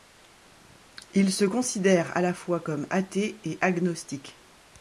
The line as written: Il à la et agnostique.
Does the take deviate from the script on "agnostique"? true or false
false